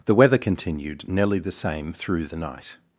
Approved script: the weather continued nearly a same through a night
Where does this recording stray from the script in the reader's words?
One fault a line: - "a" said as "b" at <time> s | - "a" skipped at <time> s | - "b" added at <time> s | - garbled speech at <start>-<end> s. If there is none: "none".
- "a" said as "the" at 1.4 s
- "a" said as "the" at 2.3 s